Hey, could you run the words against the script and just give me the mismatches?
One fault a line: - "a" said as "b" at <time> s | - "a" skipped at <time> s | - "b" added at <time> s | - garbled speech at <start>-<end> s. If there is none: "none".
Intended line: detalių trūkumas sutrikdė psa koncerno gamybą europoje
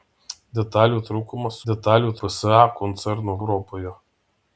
- "sutrikdė" said as "detalių" at 1.7 s
- "gamybą" skipped at 3.4 s